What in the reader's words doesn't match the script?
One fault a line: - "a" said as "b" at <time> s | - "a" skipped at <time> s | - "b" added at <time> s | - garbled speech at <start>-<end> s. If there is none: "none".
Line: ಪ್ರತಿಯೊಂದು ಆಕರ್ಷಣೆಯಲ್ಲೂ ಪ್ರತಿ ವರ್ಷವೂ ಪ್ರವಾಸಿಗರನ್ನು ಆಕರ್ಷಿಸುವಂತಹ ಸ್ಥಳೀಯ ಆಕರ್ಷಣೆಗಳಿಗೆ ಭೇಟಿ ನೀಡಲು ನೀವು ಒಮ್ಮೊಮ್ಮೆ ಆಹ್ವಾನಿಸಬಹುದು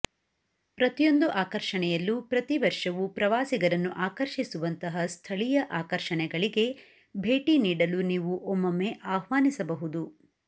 none